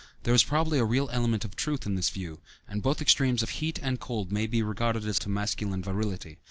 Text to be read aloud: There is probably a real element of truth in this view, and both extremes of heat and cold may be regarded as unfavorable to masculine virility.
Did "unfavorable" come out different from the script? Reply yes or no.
yes